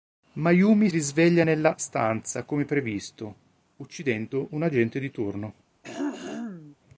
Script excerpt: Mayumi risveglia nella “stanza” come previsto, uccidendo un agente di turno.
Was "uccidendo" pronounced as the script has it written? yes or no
yes